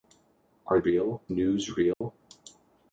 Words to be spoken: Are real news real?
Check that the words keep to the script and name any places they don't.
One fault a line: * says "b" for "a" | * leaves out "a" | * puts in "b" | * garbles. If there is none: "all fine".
all fine